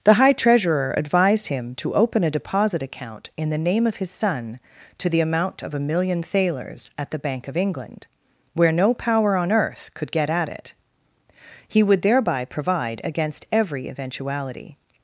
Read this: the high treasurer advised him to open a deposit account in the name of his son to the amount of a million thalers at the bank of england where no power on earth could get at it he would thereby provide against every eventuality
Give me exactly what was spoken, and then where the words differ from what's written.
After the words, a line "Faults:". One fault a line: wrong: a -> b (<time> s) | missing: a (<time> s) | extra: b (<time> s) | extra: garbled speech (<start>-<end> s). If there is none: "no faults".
the high treasurer advised him to open a deposit account in the name of his son to the amount of a million thalers at the bank of england where no power on earth could get at it he would thereby provide against every eventuality
Faults:
no faults